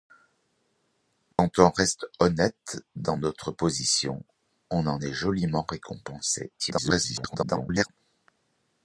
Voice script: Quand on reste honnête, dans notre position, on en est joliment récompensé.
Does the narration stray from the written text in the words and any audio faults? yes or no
yes